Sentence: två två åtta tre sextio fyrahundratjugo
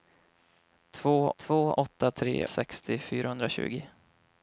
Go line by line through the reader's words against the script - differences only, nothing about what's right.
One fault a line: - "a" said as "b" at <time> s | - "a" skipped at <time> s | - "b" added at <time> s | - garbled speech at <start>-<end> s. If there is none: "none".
none